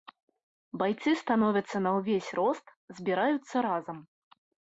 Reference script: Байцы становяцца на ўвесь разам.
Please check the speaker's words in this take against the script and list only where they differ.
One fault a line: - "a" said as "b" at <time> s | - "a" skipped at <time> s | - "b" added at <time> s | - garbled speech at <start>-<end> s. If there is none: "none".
- "рост збіраюцца" added at 2.4 s